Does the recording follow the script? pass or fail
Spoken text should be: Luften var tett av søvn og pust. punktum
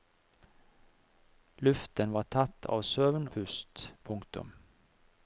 fail